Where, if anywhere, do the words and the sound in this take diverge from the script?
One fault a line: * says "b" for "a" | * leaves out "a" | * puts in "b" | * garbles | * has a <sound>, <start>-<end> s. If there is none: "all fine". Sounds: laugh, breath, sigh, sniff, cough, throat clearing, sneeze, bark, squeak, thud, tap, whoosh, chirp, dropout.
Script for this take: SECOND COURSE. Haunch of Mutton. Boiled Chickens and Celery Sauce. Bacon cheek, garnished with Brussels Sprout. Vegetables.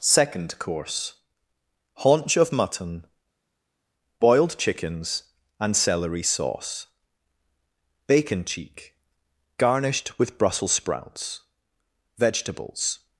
* says "Sprouts" for "Sprout"